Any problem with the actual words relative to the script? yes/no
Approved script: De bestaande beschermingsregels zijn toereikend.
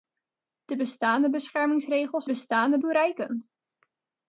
yes